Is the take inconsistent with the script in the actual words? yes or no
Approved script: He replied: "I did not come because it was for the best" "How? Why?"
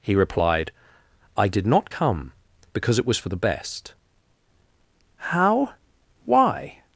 no